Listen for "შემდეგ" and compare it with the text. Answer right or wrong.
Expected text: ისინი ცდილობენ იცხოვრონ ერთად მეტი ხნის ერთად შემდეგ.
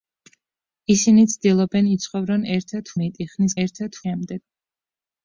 right